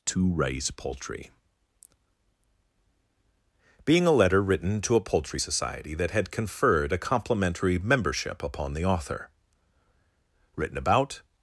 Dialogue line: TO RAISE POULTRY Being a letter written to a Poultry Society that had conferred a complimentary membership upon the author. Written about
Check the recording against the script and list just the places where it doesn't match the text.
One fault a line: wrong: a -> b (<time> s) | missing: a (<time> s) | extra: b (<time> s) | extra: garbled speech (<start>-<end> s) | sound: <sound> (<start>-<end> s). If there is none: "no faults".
no faults